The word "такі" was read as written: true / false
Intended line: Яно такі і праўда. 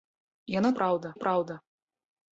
false